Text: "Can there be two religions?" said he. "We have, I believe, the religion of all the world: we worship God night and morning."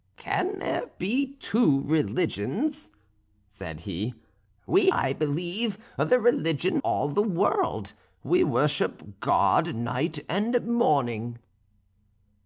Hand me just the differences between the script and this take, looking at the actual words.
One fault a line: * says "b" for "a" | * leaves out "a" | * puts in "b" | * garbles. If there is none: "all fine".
* leaves out "have"
* leaves out "of"